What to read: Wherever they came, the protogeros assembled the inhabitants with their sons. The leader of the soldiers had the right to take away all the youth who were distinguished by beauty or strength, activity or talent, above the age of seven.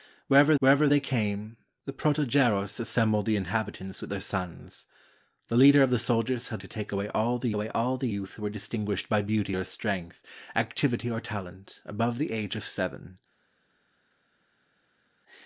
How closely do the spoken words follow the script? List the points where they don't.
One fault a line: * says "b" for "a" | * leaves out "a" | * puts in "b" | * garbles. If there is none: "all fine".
* puts in "wherever"
* says "to take away all the" for "the right to take"